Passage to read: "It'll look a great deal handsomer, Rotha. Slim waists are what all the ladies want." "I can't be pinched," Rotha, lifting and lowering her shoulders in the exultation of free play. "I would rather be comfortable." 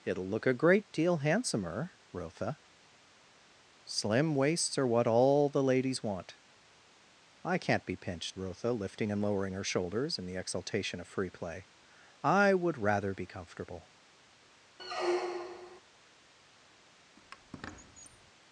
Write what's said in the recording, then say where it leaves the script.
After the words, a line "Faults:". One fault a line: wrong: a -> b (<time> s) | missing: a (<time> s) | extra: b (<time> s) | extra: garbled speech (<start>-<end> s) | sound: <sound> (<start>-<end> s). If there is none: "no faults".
"It'll look a great deal handsomer, Rotha. Slim waists are what all the ladies want." "I can't be pinched," Rotha, lifting and lowering her shoulders in the exultation of free play. "I would rather be comfortable."
Faults:
sound: squeak (14.8-15.8 s)
sound: squeak (17.2-18.3 s)